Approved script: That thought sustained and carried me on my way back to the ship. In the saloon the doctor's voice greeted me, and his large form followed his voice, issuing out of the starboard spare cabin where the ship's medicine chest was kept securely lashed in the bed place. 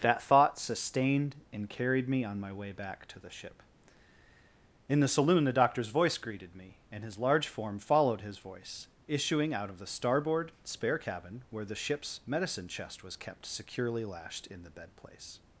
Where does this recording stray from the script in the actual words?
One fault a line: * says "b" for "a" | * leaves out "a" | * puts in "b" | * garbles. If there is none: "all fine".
all fine